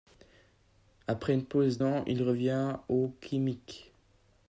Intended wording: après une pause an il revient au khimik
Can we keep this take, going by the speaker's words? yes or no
yes